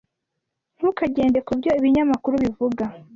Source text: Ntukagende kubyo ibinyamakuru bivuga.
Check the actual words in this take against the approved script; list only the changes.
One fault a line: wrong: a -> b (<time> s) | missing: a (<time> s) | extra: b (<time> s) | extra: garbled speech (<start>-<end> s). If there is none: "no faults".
no faults